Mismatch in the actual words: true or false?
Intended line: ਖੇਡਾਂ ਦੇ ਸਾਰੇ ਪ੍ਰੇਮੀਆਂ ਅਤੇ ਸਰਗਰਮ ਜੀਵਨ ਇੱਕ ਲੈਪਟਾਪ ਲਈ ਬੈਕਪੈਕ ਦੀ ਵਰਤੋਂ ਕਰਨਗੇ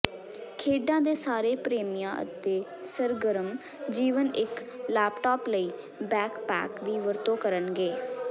false